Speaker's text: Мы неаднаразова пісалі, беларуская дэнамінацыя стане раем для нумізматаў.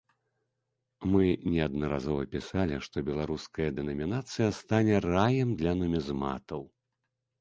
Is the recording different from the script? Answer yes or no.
yes